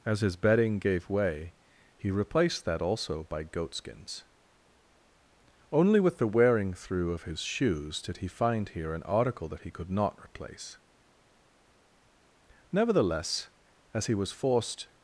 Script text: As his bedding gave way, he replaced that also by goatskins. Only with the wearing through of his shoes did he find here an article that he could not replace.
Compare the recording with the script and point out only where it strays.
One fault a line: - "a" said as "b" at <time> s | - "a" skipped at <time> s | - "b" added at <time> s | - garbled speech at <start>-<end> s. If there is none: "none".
- "Nevertheless as he was forced" added at 12.7 s